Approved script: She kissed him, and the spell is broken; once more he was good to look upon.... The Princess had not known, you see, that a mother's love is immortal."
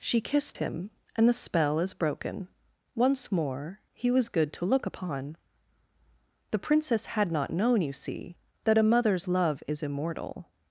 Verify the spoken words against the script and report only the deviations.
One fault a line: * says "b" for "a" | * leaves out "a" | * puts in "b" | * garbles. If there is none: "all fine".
all fine